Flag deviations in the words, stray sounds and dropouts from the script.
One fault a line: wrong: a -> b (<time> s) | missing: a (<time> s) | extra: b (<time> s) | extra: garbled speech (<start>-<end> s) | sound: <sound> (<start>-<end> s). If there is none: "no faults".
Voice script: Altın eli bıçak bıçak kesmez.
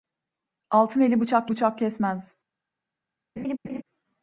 sound: laugh (3.4-3.8 s)